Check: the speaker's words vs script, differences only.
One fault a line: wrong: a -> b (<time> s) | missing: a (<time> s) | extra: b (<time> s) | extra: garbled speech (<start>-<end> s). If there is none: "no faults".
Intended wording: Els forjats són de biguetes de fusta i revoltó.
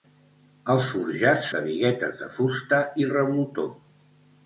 missing: són (1.5 s)